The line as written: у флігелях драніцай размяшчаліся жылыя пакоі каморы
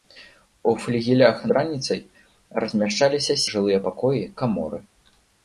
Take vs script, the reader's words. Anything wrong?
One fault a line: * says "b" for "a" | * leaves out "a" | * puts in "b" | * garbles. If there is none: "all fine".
all fine